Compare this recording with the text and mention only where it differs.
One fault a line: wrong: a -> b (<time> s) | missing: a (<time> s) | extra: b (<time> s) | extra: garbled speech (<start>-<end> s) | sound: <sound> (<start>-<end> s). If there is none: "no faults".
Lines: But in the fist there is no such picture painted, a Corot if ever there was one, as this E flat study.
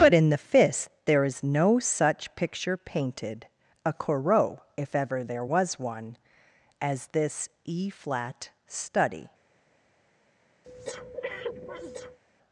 sound: breath (10.6-12.2 s)